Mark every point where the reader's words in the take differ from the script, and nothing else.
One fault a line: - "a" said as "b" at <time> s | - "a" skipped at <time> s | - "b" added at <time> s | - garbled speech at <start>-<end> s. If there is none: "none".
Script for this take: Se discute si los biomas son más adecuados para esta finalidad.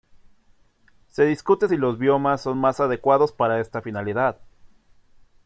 none